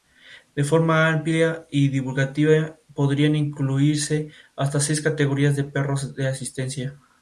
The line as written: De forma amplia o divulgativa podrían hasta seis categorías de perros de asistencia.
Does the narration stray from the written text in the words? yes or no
yes